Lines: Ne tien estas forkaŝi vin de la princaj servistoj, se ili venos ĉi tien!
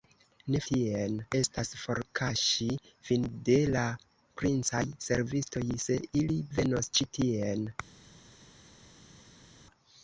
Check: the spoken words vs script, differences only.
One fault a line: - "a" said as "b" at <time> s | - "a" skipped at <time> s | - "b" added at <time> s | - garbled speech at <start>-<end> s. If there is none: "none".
none